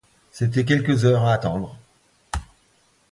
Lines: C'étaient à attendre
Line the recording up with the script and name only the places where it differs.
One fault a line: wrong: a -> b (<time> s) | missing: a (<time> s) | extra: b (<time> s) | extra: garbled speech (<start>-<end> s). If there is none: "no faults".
extra: quelques heures (0.6 s)